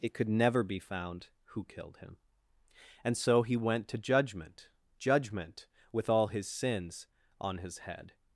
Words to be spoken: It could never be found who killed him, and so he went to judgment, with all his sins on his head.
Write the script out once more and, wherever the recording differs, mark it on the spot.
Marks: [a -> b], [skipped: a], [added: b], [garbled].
It could never be found who killed him, and so he went to judgment, [added: judgment] with all his sins on his head.